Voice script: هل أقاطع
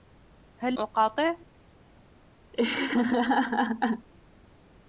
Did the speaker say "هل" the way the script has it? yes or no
yes